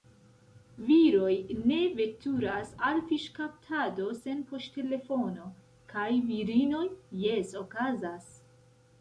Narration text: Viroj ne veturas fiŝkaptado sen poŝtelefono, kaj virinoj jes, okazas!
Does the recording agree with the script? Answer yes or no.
no